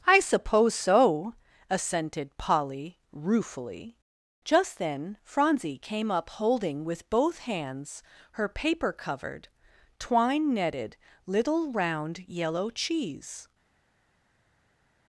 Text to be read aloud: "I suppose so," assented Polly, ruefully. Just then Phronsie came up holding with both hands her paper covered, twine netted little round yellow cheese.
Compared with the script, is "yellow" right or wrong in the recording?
right